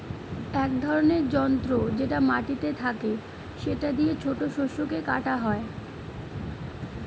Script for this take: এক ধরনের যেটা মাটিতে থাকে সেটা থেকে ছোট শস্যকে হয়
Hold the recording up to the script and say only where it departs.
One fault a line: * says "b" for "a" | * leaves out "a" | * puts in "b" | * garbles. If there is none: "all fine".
* puts in "যন্ত্র"
* says "দিয়ে" for "থেকে"
* puts in "কাটা"